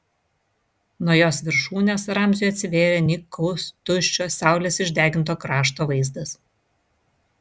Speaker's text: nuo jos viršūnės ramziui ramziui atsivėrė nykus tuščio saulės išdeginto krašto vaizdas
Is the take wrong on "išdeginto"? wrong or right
right